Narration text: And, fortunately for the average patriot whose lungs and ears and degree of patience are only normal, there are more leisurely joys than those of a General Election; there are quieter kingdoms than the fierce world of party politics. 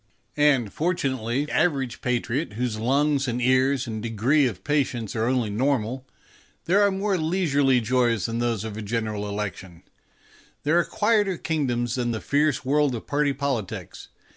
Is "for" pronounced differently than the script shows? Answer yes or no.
yes